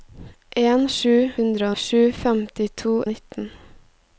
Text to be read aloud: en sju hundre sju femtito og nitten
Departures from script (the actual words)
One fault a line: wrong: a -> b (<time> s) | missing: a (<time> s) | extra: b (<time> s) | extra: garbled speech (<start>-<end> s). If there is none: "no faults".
no faults